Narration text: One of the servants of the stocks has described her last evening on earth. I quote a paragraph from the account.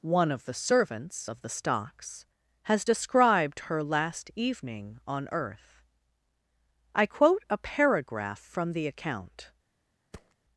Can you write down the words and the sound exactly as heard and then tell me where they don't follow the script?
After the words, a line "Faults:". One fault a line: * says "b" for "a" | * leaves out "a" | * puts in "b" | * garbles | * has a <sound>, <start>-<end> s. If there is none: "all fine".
One of the servants of the stocks has described her last evening on earth. I quote a paragraph from the account.
Faults:
* has a thud, 10.1-10.4 s